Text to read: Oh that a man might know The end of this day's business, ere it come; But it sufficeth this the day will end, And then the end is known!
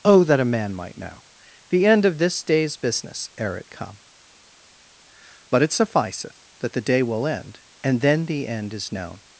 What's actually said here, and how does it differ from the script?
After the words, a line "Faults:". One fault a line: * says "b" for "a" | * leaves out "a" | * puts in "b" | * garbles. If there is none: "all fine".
Oh that a man might know The end of this day's business, ere it come; But it sufficeth that the day will end, And then the end is known!
Faults:
* says "that" for "this"